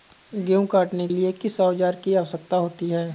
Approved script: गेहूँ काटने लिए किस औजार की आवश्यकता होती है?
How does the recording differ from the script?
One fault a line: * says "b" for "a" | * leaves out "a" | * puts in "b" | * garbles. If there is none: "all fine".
all fine